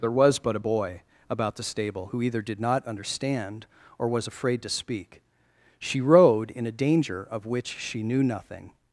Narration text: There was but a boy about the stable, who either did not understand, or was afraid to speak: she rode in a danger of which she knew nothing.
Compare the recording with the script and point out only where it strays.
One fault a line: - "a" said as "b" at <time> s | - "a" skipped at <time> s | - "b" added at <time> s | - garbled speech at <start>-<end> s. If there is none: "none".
none